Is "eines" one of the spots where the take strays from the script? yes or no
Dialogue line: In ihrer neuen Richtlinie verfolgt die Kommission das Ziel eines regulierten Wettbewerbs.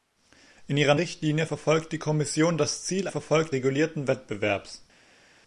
yes